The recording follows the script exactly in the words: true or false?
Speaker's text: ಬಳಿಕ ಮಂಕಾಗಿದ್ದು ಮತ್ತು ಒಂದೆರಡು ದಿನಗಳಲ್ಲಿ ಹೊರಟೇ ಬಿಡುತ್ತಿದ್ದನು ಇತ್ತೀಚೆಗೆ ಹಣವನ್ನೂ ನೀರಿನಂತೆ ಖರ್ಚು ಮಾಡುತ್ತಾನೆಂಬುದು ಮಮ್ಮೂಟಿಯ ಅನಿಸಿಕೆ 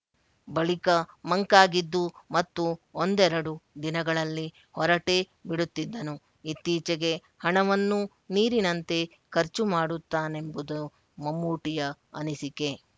true